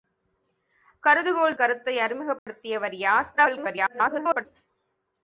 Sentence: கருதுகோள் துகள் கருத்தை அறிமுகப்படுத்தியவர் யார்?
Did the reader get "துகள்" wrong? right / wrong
wrong